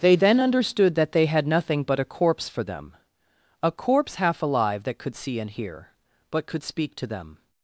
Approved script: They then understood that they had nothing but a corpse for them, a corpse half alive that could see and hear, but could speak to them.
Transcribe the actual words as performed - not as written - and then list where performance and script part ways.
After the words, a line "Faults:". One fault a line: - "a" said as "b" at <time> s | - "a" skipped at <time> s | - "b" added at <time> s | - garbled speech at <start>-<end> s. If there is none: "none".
They then understood that they had nothing but a corpse for them, a corpse half alive that could see and hear, but could speak to them.
Faults:
none